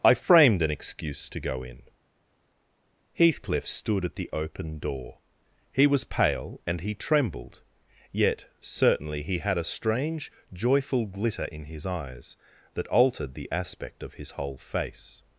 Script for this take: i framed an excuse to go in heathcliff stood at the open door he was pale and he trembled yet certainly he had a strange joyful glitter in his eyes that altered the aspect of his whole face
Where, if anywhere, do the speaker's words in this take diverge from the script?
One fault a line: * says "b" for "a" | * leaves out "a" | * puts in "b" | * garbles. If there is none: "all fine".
all fine